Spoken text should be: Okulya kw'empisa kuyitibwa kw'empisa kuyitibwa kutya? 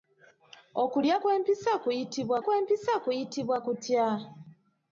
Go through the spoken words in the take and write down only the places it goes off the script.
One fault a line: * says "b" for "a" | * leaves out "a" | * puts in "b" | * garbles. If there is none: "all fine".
all fine